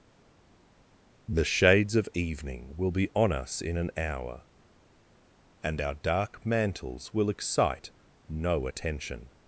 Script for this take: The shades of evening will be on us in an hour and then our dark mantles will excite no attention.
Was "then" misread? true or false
true